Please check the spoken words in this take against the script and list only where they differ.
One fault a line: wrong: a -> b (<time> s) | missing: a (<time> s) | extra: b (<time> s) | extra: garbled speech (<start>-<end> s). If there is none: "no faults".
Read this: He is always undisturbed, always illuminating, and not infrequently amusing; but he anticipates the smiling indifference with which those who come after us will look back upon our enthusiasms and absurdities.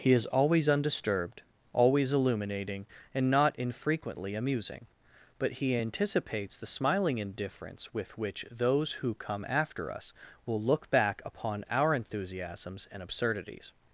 no faults